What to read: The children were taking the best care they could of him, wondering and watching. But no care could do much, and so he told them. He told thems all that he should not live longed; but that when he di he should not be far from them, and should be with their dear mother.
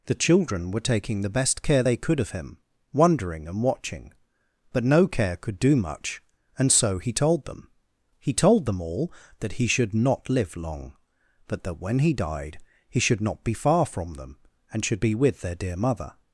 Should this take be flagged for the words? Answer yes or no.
yes